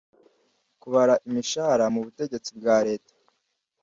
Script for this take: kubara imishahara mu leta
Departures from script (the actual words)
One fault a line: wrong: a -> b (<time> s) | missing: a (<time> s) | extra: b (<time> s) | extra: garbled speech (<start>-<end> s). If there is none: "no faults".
extra: butegetsi bwa (2.0 s)